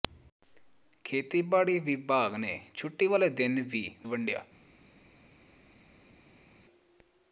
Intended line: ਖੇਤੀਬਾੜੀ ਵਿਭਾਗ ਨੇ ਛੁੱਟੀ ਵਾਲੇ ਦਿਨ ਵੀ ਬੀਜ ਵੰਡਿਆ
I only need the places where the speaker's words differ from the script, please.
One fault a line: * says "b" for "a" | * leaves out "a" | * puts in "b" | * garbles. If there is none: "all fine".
* leaves out "ਬੀਜ"